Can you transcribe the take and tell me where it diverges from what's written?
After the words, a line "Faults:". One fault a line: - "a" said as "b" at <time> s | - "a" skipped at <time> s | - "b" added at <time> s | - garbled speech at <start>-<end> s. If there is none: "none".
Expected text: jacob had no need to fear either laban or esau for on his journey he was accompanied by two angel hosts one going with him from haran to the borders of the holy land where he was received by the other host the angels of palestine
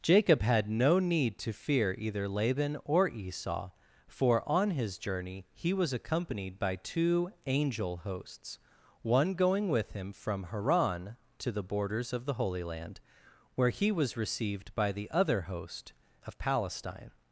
jacob had no need to fear either laban or esau for on his journey he was accompanied by two angel hosts one going with him from haran to the borders of the holy land where he was received by the other host of palestine
Faults:
- "the angels" skipped at 15.9 s